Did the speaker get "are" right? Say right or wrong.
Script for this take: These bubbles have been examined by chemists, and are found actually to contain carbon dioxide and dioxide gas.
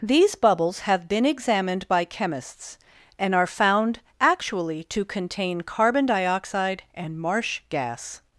right